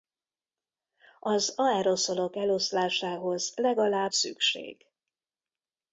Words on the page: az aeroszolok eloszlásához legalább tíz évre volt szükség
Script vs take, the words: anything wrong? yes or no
yes